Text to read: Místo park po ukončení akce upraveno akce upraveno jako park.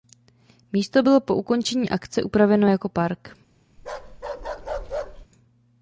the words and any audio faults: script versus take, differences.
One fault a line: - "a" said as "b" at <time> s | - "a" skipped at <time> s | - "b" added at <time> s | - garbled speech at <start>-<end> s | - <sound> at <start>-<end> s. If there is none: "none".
- "park" said as "bylo" at 1.0 s
- "akce upraveno" skipped at 2.7 s
- bark at 3.8-5.3 s